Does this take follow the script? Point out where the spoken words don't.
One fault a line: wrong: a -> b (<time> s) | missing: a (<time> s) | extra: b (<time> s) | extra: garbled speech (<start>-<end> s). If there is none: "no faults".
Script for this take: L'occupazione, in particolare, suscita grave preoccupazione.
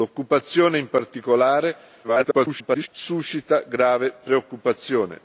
extra: garbled speech (2.0-2.9 s)